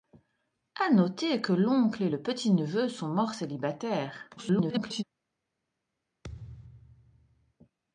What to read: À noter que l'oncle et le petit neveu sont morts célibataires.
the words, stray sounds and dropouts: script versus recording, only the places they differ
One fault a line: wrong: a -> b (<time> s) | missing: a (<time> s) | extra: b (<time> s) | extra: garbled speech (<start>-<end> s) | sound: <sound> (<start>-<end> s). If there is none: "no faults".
extra: garbled speech (4.4-5.0 s)
sound: thud (6.2-7.5 s)